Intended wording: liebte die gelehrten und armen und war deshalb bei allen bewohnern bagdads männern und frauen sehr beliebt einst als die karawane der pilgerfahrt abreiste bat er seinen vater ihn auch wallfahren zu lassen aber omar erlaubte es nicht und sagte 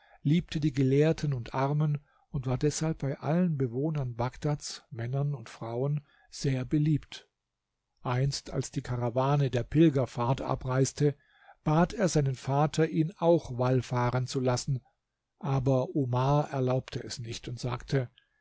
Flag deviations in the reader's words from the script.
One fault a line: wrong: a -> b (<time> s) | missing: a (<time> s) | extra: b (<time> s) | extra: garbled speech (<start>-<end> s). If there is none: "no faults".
no faults